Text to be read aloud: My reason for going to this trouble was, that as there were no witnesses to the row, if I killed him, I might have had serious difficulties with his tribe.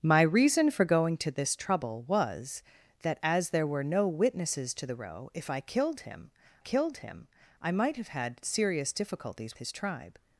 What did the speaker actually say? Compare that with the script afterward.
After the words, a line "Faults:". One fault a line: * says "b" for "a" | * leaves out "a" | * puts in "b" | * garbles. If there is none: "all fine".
My reason for going to this trouble was, that as there were no witnesses to the row, if I killed him killed him, I might have had serious difficulties his tribe.
Faults:
* puts in "killed him"
* leaves out "with"